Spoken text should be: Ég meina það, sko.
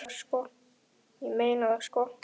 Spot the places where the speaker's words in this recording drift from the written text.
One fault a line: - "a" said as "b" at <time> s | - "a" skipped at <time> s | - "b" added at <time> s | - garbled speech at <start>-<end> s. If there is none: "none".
none